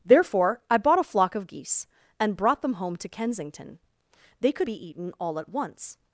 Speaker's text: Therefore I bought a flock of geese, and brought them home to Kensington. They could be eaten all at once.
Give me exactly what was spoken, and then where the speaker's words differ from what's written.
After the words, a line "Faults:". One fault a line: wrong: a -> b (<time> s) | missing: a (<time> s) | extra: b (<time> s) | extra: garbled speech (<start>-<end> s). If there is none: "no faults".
Therefore I bought a flock of geese, and brought them home to Kensington. They could be eaten all at once.
Faults:
no faults